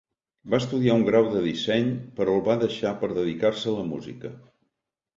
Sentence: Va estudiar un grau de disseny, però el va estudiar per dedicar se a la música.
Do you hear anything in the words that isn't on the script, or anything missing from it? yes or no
yes